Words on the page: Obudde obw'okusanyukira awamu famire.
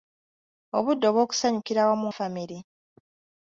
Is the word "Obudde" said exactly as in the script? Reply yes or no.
yes